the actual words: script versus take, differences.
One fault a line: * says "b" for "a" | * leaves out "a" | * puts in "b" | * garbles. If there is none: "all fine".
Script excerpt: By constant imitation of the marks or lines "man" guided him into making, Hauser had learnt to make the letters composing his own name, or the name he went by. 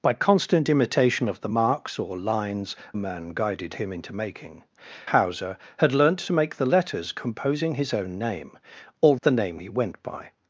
all fine